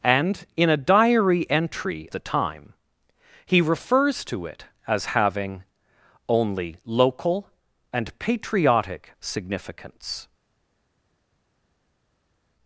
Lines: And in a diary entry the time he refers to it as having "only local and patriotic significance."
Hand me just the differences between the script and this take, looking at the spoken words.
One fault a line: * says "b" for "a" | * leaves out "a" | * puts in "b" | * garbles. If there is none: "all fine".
all fine